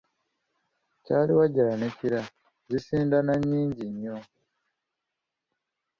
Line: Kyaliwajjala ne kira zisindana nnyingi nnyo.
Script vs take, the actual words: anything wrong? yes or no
no